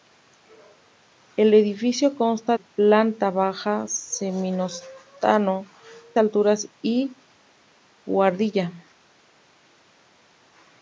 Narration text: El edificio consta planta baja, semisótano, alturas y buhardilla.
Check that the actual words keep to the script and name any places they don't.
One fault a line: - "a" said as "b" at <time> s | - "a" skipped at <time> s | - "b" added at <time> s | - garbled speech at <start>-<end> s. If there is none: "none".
none